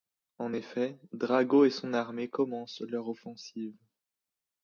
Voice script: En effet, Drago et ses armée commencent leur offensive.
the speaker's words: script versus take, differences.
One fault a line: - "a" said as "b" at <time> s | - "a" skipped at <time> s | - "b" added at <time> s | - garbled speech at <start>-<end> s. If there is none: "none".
- "ses" said as "son" at 1.7 s